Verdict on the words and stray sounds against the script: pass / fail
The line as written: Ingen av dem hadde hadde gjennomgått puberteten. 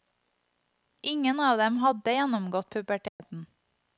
fail